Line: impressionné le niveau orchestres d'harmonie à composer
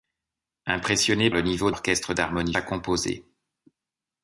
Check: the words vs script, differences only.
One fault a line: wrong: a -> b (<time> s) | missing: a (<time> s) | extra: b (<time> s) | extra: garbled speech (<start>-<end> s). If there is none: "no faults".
no faults